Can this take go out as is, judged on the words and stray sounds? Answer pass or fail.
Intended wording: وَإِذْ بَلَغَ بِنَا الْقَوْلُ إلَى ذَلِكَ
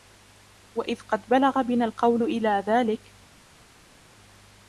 fail